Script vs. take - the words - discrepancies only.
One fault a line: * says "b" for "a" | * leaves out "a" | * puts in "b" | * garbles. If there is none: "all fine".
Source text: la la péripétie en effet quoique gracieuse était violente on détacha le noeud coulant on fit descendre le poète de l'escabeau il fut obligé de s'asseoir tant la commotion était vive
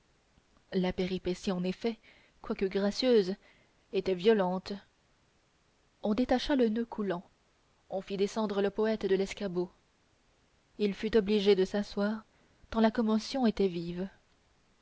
* leaves out "la"